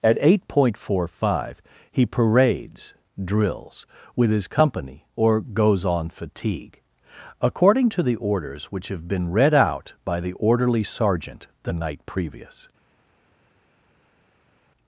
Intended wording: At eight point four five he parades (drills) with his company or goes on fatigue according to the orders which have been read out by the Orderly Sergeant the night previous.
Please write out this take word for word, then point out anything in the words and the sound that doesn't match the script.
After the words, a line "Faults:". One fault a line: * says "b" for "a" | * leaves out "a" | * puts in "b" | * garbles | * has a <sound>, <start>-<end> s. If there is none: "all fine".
At eight point four five he parades (drills) with his company or goes on fatigue according to the orders which have been read out by the Orderly Sergeant the night previous.
Faults:
all fine